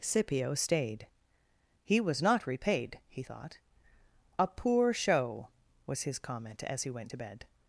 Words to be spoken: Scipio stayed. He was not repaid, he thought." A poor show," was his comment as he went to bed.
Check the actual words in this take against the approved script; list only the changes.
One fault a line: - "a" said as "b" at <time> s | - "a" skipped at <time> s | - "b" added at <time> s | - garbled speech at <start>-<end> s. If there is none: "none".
none